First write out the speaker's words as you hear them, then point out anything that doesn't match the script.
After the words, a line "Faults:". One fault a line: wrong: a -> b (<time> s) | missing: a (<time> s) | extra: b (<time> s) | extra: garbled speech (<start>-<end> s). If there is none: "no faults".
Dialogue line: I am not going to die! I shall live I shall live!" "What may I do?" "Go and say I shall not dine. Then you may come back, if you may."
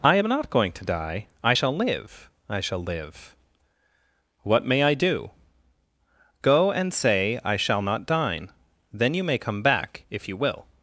I am not going to die! I shall live I shall live!" "What may I do?" "Go and say I shall not dine. Then you may come back, if you will."
Faults:
wrong: may -> will (10.4 s)